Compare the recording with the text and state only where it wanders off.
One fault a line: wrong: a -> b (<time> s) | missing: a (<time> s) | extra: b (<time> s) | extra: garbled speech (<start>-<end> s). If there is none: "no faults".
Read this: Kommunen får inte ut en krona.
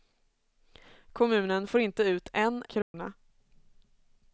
no faults